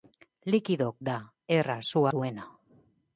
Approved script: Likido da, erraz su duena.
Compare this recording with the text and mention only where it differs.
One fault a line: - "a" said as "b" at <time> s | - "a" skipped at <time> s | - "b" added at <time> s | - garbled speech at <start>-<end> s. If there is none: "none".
none